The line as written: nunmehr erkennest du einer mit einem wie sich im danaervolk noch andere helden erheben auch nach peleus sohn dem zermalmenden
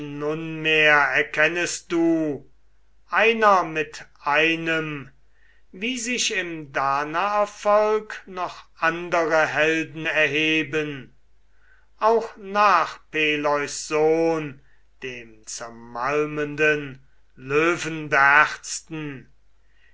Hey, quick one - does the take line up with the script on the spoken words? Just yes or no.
yes